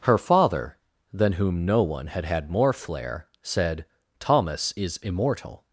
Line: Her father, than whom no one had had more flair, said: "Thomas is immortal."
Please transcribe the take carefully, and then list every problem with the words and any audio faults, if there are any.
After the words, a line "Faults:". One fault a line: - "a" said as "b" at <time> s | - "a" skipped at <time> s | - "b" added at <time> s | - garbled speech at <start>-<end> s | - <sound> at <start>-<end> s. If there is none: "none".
Her father, than whom no one had had more flair, said: "Thomas is immortal."
Faults:
none